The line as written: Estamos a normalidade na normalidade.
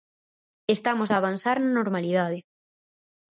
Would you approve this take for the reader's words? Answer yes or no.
no